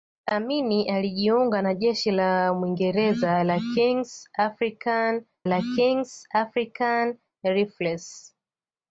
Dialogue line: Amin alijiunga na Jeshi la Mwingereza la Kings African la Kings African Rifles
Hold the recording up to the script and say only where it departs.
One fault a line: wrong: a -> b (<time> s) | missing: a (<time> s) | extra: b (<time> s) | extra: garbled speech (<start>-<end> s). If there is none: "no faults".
no faults